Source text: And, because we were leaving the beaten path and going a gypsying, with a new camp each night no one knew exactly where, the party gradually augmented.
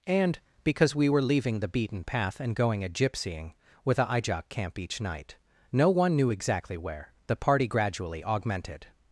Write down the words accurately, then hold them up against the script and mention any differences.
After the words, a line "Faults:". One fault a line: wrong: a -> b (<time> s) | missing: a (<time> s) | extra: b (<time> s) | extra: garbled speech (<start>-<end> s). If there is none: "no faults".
And, because we were leaving the beaten path and going a gypsying, with a ijok camp each night no one knew exactly where, the party gradually augmented.
Faults:
wrong: new -> ijok (4.0 s)